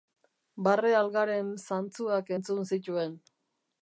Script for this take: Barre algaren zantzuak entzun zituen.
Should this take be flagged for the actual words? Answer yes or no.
no